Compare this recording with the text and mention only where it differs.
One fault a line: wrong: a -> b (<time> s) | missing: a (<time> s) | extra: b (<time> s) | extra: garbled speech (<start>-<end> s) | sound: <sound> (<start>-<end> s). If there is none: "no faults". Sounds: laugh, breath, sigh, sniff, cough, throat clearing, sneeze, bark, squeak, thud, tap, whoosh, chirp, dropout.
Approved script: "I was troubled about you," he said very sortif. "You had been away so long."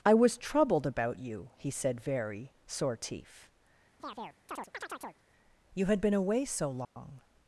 sound: chirp (4.0-5.2 s)
sound: dropout (6.8-7.0 s)